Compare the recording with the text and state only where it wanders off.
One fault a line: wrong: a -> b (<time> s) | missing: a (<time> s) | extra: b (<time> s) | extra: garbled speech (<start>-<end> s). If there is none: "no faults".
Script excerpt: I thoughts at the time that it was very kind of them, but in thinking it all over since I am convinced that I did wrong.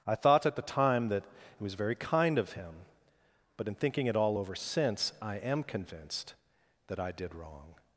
wrong: thoughts -> thought (0.1 s)
wrong: them -> him (2.5 s)